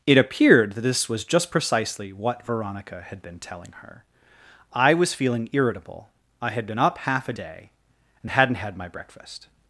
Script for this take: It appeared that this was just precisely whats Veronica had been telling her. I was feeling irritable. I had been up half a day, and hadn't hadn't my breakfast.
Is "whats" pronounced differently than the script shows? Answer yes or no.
yes